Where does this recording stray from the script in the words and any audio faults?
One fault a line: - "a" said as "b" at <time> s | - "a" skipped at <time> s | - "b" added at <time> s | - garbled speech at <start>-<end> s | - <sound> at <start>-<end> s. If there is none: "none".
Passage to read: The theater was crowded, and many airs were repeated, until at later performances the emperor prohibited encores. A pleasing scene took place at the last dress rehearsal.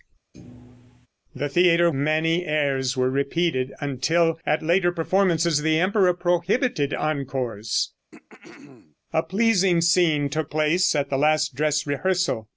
- thud at 0.3-1.1 s
- "was crowded and" skipped at 1.9 s
- throat clearing at 8.1-9.0 s